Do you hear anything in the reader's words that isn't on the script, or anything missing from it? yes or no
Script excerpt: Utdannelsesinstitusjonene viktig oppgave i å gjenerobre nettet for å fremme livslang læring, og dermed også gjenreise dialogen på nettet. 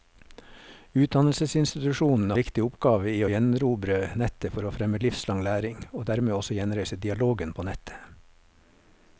no